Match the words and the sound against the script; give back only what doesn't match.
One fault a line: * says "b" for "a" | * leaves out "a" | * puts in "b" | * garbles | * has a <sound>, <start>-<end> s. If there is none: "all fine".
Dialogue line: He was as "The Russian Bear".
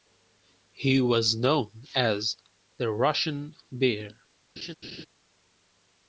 * puts in "known"
* has a laugh, 4.6-5.1 s